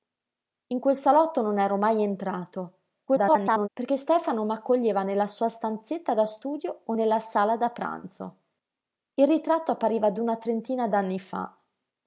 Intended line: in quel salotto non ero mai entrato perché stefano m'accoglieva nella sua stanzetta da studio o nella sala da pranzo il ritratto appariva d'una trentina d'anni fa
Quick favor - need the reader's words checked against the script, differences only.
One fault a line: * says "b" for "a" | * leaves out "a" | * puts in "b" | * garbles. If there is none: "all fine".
* garbles